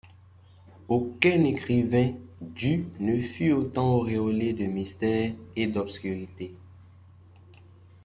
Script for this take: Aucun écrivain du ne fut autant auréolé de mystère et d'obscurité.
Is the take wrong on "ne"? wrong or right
right